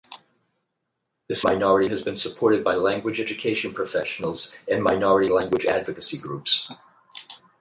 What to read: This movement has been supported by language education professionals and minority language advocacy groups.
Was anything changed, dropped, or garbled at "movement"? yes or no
yes